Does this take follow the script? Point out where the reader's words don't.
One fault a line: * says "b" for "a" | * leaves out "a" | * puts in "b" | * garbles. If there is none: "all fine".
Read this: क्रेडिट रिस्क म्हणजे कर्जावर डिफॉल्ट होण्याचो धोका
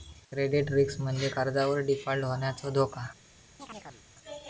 all fine